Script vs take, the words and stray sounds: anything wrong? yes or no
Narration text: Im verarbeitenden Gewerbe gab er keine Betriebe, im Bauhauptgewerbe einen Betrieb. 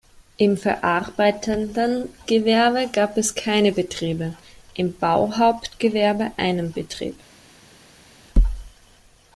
yes